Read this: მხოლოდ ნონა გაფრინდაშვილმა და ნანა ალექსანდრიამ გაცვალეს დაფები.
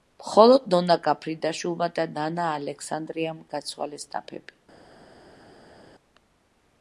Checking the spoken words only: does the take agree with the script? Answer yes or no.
yes